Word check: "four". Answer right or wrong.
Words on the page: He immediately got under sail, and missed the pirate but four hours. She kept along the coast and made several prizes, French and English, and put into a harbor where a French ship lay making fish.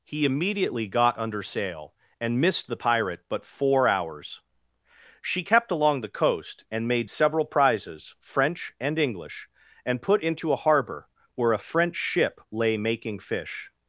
right